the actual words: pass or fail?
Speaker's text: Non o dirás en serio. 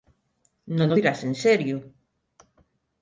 pass